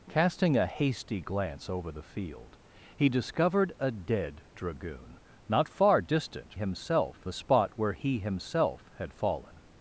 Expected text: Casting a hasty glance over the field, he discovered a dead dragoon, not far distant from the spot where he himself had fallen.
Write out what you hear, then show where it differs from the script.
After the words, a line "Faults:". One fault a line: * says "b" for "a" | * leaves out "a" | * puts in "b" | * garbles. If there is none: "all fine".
Casting a hasty glance over the field, he discovered a dead dragoon, not far distant himself the spot where he himself had fallen.
Faults:
* says "himself" for "from"